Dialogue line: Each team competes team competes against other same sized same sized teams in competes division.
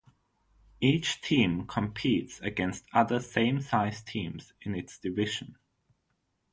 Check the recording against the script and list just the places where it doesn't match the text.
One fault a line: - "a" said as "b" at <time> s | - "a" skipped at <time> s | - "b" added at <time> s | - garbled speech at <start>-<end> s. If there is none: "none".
- "team competes" skipped at 2.4 s
- "same sized" skipped at 4.1 s
- "competes" said as "its" at 4.7 s